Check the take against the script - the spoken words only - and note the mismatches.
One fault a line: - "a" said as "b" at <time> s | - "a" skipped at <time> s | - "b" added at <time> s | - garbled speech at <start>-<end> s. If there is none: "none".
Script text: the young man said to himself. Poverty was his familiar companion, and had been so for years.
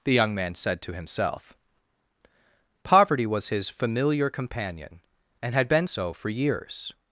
none